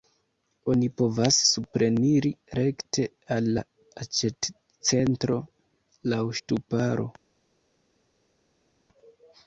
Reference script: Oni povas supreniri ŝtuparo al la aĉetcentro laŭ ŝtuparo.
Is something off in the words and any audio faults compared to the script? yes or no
yes